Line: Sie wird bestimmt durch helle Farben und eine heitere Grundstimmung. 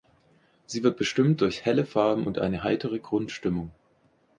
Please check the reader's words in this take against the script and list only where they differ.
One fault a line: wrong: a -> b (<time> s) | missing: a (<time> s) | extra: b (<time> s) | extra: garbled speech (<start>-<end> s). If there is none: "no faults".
no faults